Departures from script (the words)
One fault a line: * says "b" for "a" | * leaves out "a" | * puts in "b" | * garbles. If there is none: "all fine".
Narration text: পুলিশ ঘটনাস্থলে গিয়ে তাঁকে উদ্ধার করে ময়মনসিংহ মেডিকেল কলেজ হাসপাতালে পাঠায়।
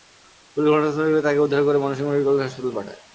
all fine